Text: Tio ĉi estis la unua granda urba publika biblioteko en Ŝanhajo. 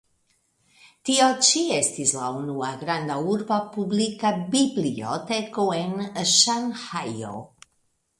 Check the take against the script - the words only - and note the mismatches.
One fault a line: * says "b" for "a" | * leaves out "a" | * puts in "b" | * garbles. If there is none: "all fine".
all fine